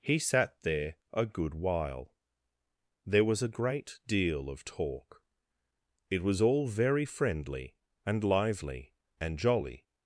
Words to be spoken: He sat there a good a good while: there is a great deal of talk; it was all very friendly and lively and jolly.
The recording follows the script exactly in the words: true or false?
false